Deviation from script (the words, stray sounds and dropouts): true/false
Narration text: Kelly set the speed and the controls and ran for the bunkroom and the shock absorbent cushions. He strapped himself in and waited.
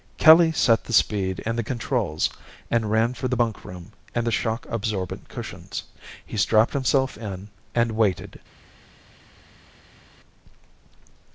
false